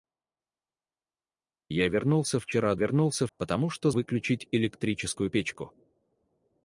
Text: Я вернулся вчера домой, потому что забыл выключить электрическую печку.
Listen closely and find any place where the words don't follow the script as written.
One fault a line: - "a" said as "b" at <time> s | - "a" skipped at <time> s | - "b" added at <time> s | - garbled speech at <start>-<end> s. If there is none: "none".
- "домой" said as "вернулся" at 2.7 s
- "забыл" skipped at 3.9 s